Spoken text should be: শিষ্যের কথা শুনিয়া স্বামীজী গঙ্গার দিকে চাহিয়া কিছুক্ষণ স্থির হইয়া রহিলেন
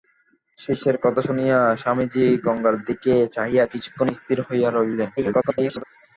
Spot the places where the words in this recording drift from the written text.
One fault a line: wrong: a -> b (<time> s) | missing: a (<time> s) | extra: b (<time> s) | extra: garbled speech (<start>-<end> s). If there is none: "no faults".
extra: garbled speech (5.2-5.8 s)